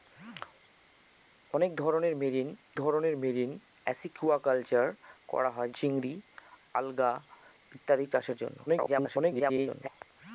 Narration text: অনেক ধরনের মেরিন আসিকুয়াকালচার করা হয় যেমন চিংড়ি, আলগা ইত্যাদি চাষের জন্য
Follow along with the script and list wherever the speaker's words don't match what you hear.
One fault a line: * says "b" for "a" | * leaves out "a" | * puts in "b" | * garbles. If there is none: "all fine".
* puts in "ধরনের মেরিন"
* leaves out "যেমন"
* garbles